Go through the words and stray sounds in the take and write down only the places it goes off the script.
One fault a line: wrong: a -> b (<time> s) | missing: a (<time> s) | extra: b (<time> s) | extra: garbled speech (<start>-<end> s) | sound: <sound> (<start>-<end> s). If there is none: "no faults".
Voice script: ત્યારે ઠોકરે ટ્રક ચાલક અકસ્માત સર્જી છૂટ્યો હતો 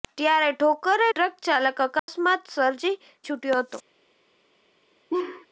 sound: dropout (2.0-2.1 s)
sound: laugh (5.1-5.5 s)